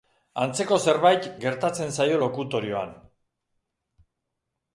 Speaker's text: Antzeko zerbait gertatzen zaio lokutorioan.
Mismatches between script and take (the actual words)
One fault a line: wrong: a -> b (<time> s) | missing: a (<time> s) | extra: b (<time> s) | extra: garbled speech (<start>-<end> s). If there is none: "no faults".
no faults